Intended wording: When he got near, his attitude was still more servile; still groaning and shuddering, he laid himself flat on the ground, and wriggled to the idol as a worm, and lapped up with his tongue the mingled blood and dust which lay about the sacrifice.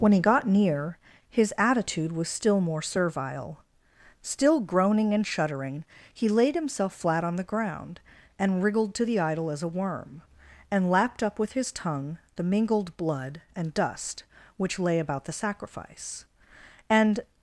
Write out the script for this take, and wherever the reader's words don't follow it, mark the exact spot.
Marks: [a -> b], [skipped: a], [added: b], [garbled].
When he got near, his attitude was still more servile; still groaning and shuddering, he laid himself flat on the ground, and wriggled to the idol as a worm, and lapped up with his tongue the mingled blood and dust which lay about the sacrifice. [added: And]